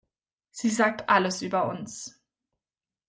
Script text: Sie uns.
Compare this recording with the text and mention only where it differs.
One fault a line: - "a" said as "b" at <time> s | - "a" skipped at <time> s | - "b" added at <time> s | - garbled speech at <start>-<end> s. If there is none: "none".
- "sagt alles über" added at 0.7 s